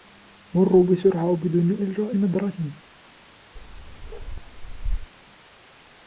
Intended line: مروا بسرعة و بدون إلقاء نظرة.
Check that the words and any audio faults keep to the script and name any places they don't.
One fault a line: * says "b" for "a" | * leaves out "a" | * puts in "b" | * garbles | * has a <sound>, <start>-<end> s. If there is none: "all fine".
* has a bark, 3.6-5.1 s